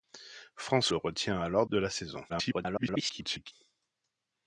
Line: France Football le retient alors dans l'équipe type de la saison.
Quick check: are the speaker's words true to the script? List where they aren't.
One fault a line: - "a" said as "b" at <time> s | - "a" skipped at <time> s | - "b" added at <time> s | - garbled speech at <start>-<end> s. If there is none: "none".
- "Football" skipped at 0.9 s
- "dans l'équipe type" skipped at 1.7 s
- garbled speech at 2.3-3.5 s